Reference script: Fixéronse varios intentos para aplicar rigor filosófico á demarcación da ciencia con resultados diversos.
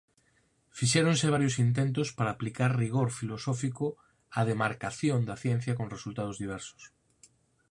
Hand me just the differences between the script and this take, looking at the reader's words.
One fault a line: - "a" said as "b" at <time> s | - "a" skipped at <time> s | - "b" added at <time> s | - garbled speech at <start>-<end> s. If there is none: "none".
none